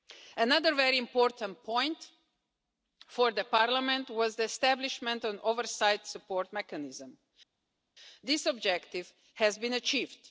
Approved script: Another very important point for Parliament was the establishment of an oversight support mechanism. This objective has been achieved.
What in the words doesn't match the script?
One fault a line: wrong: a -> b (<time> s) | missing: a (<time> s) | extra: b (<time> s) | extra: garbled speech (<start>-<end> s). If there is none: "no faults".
no faults